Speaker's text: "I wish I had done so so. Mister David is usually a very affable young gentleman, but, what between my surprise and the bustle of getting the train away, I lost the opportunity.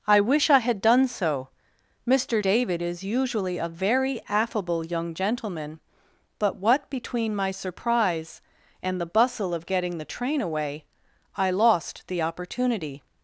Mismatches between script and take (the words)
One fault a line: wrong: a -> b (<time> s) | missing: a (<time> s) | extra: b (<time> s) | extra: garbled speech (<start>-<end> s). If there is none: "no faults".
missing: so (1.5 s)